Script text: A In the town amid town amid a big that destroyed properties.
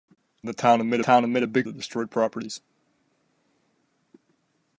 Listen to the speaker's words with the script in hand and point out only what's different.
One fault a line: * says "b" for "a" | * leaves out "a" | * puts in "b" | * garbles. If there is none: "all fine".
all fine